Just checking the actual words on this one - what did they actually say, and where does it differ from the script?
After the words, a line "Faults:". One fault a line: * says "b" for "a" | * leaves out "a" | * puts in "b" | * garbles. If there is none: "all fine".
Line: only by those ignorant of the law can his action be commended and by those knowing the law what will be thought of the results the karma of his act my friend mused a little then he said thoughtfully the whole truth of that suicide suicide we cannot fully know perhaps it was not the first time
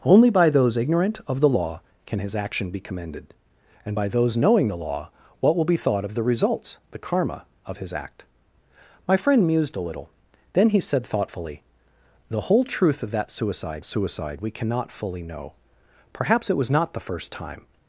only by those ignorant of the law can his action be commended and by those knowing the law what will be thought of the results the karma of his act my friend mused a little then he said thoughtfully the whole truth of that suicide suicide we cannot fully know perhaps it was not the first time
Faults:
all fine